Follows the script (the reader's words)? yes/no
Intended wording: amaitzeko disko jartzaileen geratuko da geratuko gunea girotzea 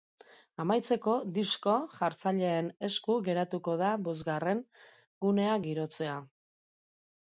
no